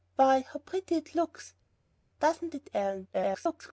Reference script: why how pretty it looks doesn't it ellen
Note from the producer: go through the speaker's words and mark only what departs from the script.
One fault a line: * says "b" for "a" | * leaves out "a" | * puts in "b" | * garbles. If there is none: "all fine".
* garbles